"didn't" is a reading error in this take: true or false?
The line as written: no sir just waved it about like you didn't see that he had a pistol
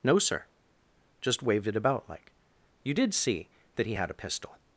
true